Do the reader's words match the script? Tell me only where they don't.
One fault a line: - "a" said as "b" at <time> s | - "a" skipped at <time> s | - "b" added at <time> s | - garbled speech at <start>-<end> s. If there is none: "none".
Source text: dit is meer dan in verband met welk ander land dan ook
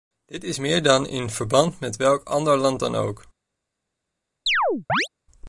none